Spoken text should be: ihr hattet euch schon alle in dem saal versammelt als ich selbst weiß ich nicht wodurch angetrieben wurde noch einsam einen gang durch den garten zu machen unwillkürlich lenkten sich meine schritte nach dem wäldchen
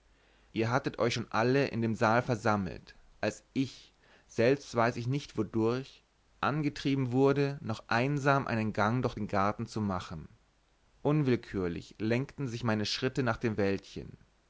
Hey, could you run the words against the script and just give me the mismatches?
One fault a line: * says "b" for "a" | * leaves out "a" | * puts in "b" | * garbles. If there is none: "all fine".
all fine